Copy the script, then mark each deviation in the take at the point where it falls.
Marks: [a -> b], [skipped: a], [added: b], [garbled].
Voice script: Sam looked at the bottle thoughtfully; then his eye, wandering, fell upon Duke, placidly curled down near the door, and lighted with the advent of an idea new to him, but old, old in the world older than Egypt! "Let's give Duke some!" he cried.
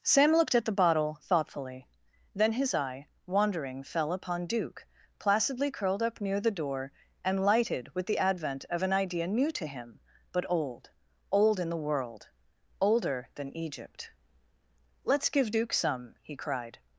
Sam looked at the bottle thoughtfully; then his eye, wandering, fell upon Duke, placidly curled [down -> up] near the door, and lighted with the advent of an idea new to him, but old, old in the world older than Egypt! "Let's give Duke some!" he cried.